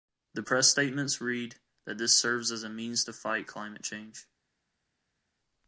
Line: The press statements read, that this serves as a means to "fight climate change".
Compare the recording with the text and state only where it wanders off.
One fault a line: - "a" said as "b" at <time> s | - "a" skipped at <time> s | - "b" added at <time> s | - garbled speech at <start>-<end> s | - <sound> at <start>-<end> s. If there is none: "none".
none